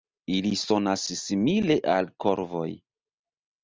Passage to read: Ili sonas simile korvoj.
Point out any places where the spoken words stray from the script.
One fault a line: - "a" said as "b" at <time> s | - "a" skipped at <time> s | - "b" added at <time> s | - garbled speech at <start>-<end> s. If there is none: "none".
- "al" added at 2.0 s